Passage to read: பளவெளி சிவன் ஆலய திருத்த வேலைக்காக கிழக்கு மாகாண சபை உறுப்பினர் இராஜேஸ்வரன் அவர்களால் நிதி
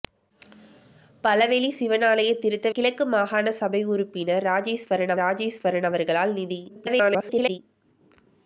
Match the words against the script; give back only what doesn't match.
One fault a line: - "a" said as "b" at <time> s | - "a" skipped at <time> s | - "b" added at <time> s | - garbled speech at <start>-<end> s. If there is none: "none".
- "வேலைக்காக" skipped at 2.7 s
- "இராஜேஸ்வரன்" added at 5.2 s
- garbled speech at 6.7-7.6 s